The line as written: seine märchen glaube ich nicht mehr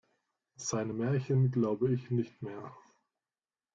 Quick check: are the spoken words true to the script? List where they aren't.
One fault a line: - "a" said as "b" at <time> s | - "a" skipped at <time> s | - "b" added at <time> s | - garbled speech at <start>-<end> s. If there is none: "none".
none